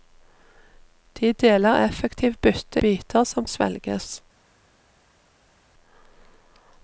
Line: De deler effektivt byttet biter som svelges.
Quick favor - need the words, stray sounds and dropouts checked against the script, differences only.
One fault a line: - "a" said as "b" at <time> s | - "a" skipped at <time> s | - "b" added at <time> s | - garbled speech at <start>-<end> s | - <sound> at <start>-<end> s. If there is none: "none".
none